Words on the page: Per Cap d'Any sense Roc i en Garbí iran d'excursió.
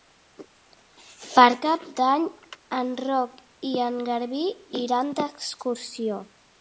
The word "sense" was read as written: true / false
false